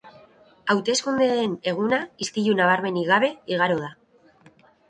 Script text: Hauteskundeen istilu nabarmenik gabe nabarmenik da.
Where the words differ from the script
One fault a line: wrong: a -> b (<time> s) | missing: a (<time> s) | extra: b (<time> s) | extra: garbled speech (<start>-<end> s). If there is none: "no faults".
extra: eguna (1.7 s)
wrong: nabarmenik -> igaro (3.6 s)